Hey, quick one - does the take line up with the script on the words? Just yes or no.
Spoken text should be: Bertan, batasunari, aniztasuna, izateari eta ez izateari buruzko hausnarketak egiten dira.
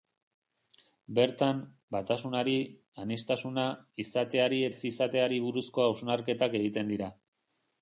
no